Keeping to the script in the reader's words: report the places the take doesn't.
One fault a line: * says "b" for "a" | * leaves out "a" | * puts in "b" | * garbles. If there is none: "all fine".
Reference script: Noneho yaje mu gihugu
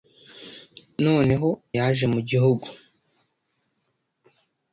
all fine